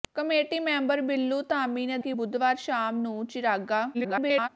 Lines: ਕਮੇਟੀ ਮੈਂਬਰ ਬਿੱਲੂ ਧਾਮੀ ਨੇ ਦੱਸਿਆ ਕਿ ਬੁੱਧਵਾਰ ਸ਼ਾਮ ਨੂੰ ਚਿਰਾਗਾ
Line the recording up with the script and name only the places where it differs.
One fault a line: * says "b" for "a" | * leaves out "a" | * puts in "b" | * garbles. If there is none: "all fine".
* leaves out "ਦੱਸਿਆ"
* garbles